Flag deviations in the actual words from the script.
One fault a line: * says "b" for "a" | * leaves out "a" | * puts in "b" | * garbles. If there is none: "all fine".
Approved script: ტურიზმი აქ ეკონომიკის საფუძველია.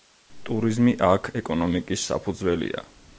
all fine